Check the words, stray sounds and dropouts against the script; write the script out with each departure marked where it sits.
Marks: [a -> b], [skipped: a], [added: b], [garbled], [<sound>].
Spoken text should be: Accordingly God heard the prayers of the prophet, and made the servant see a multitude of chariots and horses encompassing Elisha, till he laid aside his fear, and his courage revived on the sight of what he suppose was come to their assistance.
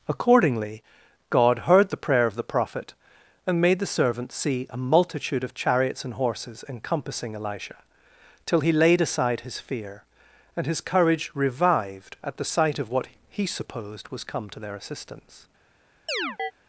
Accordingly God heard the [prayers -> prayer] of the prophet, and made the servant see a multitude of chariots and horses encompassing Elisha, till he laid aside his fear, and his courage revived [on -> at] the sight of what he [suppose -> supposed] was come to their assistance. [chirp]